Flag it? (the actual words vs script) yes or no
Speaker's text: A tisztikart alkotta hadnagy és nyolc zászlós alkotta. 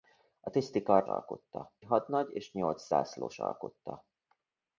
no